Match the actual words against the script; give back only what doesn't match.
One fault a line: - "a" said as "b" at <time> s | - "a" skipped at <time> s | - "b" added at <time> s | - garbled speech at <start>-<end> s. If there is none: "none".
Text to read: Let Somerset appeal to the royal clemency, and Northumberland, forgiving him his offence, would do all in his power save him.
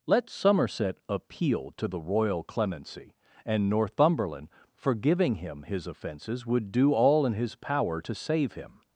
- "offence" said as "offences" at 5.9 s
- "to" added at 8.0 s